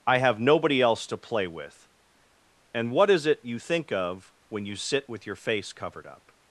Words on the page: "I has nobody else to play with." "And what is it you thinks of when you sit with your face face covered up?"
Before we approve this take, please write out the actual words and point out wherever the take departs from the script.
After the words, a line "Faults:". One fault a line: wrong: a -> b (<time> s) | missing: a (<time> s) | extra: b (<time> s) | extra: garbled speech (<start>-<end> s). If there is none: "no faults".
"I have nobody else to play with." "And what is it you think of when you sit with your face covered up?"
Faults:
wrong: has -> have (0.2 s)
wrong: thinks -> think (3.6 s)
missing: face (5.7 s)